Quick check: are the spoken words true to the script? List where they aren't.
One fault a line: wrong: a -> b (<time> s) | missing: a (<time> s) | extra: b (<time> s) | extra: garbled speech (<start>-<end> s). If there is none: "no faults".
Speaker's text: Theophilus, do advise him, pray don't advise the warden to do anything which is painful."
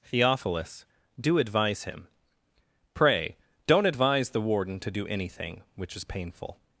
no faults